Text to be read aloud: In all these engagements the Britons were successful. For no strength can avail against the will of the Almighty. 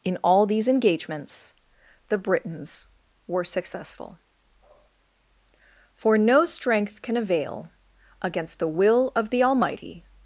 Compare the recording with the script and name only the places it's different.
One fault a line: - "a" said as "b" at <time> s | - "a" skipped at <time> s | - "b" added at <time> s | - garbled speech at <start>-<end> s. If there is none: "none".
none